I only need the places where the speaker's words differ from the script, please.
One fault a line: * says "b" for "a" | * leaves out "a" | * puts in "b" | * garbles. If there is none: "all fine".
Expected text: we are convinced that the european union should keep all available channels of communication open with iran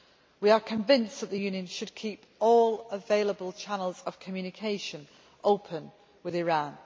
* leaves out "european"